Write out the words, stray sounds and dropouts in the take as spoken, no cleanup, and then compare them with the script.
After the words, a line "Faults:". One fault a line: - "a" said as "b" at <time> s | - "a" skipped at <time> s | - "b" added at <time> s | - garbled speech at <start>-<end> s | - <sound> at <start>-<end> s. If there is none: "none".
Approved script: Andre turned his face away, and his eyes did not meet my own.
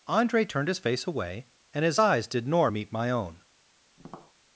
Andre turned his face away, and his eyes did nor meet my own.
Faults:
- "not" said as "nor" at 2.5 s
- tap at 4.0-4.3 s